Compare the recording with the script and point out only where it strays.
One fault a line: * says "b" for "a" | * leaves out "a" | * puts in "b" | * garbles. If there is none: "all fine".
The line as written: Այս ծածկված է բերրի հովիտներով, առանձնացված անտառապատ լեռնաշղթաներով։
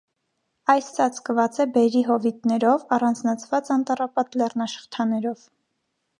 all fine